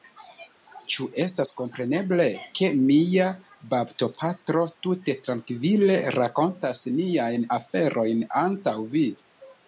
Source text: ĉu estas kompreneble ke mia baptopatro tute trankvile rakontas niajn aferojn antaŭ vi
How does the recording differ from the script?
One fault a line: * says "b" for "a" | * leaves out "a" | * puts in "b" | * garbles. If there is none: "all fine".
all fine